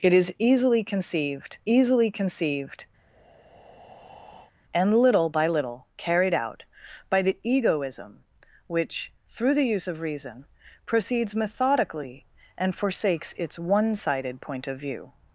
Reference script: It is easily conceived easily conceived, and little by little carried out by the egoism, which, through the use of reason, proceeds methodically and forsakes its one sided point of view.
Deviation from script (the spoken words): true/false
false